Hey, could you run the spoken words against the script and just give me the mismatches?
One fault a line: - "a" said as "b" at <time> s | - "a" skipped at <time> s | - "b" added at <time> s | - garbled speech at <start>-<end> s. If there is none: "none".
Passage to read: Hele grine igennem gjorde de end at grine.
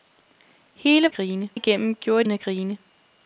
none